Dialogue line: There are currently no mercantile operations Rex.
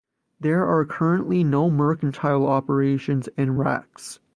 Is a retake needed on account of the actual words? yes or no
yes